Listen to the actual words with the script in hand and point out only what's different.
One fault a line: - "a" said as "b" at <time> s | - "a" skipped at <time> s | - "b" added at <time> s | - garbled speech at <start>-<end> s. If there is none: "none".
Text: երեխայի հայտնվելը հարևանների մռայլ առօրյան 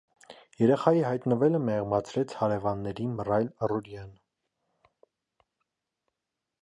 - "մեղմացրեց" added at 1.6 s